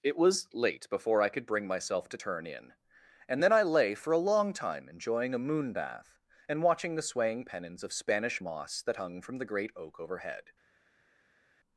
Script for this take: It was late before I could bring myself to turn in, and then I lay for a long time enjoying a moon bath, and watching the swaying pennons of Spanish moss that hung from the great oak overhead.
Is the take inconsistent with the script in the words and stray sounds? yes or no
no